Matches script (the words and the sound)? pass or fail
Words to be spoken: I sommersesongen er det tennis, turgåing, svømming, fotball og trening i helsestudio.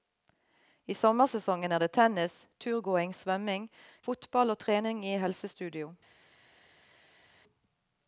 pass